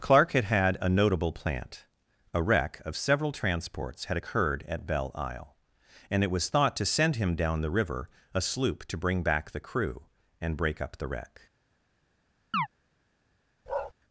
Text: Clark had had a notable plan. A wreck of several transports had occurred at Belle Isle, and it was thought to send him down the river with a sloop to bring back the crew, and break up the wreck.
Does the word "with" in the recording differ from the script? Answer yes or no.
yes